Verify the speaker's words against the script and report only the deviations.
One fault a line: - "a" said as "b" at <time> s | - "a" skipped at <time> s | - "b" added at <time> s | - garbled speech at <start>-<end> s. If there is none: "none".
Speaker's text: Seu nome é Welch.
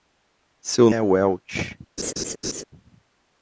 - "nome" skipped at 0.9 s